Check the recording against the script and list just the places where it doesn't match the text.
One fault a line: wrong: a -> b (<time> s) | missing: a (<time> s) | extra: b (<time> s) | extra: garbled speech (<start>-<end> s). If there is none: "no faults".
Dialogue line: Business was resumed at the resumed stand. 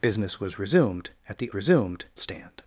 no faults